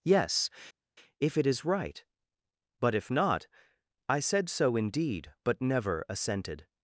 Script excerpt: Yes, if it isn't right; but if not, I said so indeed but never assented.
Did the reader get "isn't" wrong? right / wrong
wrong